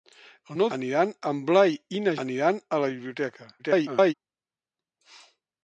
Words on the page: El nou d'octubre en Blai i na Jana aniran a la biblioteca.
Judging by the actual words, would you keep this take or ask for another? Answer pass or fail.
fail